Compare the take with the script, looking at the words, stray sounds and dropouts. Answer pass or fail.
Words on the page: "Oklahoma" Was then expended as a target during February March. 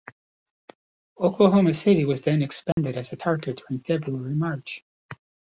fail